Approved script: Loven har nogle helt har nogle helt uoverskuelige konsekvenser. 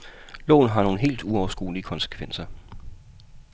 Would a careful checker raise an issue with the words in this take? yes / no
yes